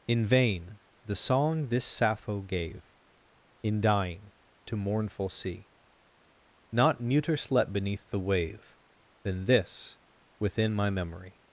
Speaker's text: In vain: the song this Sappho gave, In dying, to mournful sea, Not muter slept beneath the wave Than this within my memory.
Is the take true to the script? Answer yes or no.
yes